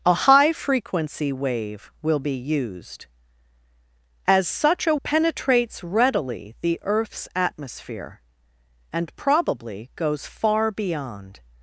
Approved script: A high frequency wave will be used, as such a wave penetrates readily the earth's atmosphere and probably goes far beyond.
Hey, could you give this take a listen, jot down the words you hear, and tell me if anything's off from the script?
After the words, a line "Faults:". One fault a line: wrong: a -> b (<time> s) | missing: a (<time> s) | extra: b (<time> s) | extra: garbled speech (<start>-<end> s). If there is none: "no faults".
A high frequency wave will be used, as such a penetrates readily the earth's atmosphere and probably goes far beyond.
Faults:
missing: wave (5.0 s)